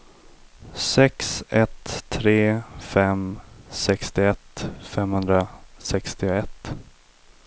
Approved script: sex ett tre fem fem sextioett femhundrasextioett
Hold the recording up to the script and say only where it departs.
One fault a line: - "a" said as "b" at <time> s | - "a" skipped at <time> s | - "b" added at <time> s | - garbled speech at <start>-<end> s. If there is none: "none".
- "fem" skipped at 3.4 s